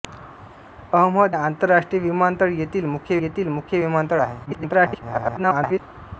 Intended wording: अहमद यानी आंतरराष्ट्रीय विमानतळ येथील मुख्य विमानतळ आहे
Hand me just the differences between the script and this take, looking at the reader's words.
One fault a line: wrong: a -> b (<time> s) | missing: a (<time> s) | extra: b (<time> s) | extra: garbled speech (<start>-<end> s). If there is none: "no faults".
missing: यानी (1.4 s)
extra: येथील मुख्य (3.2 s)
extra: garbled speech (4.4-5.8 s)